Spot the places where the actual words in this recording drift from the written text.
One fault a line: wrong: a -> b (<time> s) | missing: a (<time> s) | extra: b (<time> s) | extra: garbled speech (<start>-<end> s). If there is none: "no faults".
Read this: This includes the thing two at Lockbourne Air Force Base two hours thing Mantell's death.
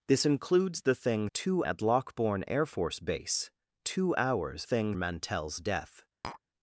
no faults